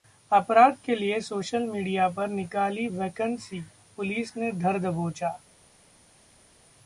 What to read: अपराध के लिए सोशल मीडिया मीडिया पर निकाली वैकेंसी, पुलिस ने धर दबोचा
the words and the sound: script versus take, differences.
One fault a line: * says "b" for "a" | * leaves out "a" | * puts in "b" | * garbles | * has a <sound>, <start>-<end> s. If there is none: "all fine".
* leaves out "मीडिया"